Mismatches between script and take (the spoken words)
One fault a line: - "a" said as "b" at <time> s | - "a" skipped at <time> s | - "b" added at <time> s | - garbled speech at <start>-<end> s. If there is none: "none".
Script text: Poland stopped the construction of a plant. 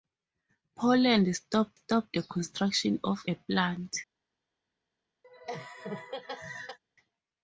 - "stopped" added at 1.7 s